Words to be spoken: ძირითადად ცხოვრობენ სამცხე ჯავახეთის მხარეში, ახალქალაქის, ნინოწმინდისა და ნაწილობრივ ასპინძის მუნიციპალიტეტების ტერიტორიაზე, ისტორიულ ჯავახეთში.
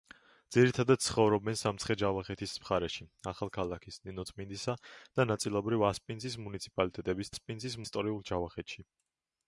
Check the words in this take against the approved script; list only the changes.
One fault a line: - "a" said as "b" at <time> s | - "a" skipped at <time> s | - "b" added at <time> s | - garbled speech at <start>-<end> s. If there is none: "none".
- "ტერიტორიაზე" said as "ასპინძის" at 7.3 s